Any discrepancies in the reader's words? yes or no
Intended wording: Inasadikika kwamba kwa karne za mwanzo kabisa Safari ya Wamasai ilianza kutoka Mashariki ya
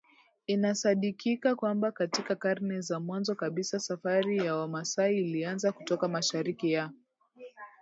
yes